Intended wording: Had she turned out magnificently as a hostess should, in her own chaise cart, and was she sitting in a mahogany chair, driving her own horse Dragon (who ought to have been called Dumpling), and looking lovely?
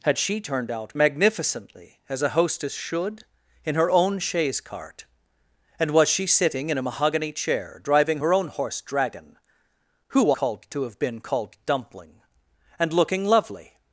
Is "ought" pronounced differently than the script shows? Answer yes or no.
yes